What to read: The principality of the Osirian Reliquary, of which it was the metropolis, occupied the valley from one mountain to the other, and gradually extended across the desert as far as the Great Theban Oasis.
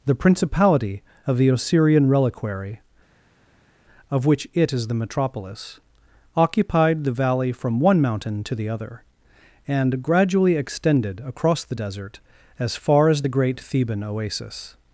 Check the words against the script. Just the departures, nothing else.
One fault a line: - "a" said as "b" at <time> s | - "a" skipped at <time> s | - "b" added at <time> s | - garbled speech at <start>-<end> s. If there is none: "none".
- "was" said as "is" at 4.7 s